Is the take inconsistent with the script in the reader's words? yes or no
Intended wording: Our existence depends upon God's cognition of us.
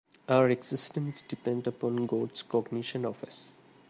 no